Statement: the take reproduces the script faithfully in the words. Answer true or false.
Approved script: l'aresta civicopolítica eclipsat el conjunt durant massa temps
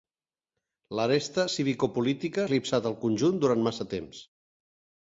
true